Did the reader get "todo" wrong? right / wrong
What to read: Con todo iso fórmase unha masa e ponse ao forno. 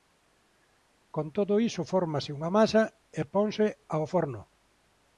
right